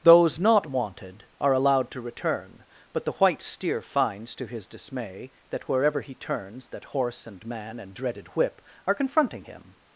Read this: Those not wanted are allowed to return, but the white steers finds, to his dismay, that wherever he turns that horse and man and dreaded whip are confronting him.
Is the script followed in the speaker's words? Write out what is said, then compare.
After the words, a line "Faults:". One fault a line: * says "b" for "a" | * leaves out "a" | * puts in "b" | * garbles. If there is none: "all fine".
Those not wanted are allowed to return, but the white steer finds, to his dismay, that wherever he turns that horse and man and dreaded whip are confronting him.
Faults:
* says "steer" for "steers"